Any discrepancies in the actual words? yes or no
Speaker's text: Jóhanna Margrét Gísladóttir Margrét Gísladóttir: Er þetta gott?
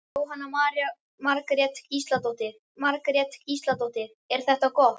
no